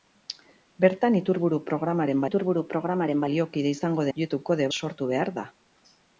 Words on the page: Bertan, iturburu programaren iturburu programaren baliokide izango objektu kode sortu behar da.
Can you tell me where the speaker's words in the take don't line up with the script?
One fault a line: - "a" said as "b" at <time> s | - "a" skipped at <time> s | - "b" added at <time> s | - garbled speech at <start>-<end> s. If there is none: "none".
none